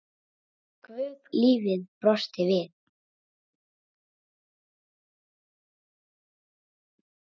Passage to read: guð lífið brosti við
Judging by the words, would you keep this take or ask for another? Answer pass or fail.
pass